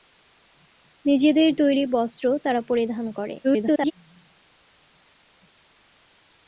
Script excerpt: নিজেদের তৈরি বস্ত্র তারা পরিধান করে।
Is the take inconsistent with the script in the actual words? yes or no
yes